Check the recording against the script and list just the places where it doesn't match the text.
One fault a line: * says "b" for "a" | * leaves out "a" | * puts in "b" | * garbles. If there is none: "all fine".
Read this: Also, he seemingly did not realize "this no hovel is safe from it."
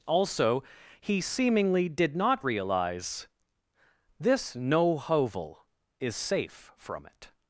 all fine